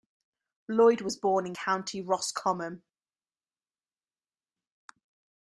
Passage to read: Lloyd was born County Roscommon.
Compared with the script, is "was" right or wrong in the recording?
right